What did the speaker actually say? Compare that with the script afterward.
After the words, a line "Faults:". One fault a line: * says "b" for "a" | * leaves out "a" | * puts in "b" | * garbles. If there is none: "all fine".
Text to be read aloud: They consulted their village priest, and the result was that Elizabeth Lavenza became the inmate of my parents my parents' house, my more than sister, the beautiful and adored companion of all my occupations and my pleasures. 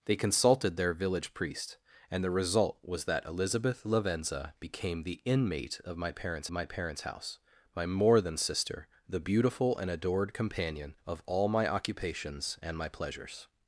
They consulted their village priest, and the result was that Elizabeth Lavenza became the inmate of my parents my parents' house, my more than sister, the beautiful and adored companion of all my occupations and my pleasures.
Faults:
all fine